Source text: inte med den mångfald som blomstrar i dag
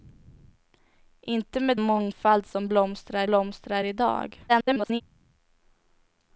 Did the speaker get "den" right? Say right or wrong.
wrong